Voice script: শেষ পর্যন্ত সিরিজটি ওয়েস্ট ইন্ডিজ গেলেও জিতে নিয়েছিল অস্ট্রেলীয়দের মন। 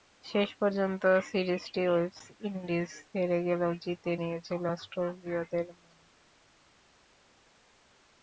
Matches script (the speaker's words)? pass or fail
fail